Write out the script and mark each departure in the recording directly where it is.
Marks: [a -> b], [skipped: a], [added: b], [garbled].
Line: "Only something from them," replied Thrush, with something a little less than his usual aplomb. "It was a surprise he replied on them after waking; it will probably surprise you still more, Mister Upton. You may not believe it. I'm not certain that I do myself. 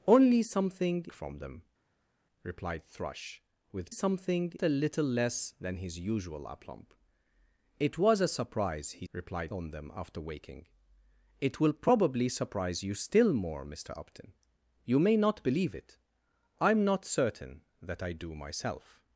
"Only something from them," replied Thrush, with something a little less than his usual aplomb. "It was a surprise he replied on them after waking; it will probably surprise you still more, Mister Upton. You may not believe it. I'm not certain that I do myself.